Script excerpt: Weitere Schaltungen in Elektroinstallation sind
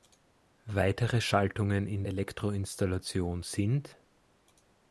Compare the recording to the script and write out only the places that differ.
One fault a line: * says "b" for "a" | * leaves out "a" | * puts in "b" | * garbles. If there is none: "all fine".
all fine